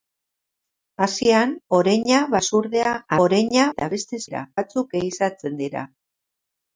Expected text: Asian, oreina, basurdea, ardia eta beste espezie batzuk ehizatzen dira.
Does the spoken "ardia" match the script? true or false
false